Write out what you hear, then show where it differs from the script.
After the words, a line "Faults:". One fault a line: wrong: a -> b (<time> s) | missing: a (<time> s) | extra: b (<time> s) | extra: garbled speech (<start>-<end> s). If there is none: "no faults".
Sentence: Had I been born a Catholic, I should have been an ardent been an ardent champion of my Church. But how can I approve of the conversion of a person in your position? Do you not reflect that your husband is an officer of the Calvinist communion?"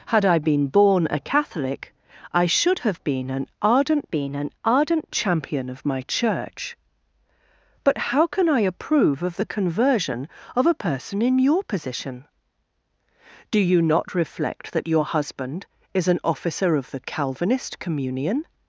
Had I been born a Catholic, I should have been an ardent been an ardent champion of my Church. But how can I approve of the conversion of a person in your position? Do you not reflect that your husband is an officer of the Calvinist communion?"
Faults:
no faults